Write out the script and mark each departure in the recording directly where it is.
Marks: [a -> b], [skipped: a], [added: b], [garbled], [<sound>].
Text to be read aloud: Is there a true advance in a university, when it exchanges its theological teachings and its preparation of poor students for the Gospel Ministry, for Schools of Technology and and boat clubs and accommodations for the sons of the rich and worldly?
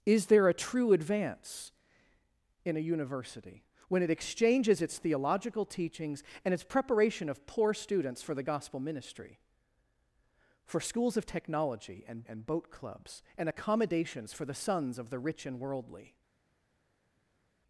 Is there a true advance in a university, when it exchanges its theological teachings and its preparation of poor students for the Gospel Ministry, for Schools of Technology and and boat clubs and accommodations for the sons of the rich and worldly?